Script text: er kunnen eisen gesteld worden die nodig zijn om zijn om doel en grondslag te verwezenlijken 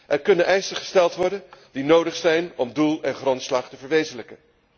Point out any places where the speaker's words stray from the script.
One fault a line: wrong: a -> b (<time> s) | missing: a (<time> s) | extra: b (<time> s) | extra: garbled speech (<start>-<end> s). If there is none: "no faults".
missing: zijn om (2.7 s)